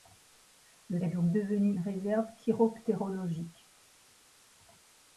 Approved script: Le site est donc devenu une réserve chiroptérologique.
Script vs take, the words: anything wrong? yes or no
yes